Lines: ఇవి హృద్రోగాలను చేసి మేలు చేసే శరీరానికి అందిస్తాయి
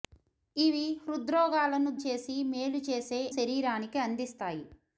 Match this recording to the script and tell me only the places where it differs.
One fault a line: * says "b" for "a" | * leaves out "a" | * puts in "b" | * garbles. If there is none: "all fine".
all fine